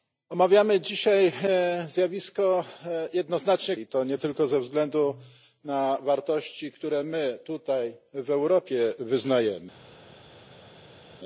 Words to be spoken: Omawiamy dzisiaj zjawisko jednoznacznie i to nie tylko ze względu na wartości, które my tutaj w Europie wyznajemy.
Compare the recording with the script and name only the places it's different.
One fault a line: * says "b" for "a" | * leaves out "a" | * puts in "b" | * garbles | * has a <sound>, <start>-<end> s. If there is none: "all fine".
all fine